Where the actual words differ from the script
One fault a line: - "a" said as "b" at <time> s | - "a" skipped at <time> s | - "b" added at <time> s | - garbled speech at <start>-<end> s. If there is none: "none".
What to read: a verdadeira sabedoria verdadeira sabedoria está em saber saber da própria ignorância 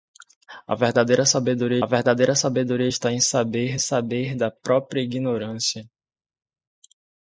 none